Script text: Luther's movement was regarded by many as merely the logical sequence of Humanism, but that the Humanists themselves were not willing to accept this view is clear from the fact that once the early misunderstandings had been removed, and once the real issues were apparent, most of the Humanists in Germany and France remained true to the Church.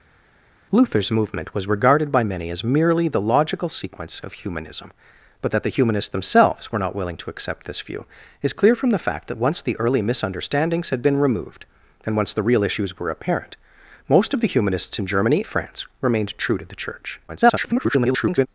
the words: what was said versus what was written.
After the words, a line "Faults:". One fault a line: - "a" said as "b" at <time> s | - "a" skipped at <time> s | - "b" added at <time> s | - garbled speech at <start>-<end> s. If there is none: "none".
Luther's movement was regarded by many as merely the logical sequence of Humanism, but that the Humanists themselves were not willing to accept this view is clear from the fact that once the early misunderstandings had been removed, and once the real issues were apparent, most of the Humanists in Germany France remained true to the Church. [garbled]
Faults:
- "and" skipped at 15.4 s
- garbled speech at 17.3-18.5 s